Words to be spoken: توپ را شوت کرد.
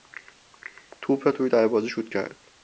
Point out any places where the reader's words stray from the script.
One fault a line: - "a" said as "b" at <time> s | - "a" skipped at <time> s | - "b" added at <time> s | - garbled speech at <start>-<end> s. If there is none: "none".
- "توی دروازه" added at 1.3 s